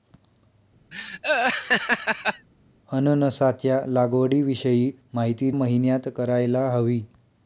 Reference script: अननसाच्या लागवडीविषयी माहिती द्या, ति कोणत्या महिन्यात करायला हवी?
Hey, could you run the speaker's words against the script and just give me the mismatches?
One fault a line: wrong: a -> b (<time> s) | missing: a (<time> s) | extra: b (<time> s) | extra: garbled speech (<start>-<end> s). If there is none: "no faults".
missing: द्या ति कोणत्या (5.5 s)